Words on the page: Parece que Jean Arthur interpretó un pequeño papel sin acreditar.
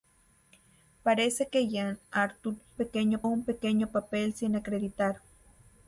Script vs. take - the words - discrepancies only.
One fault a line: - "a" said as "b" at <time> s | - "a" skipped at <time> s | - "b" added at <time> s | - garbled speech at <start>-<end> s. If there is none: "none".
- "interpretó" said as "pequeño" at 2.8 s